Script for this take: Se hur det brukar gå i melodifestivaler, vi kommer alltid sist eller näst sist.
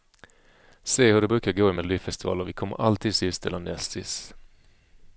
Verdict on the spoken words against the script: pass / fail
pass